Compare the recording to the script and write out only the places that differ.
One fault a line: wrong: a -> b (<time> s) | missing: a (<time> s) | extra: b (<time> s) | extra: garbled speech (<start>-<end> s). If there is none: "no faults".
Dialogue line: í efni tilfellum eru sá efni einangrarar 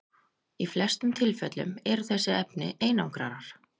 wrong: efni -> flestum (0.7 s)
wrong: sá -> þessi (2.1 s)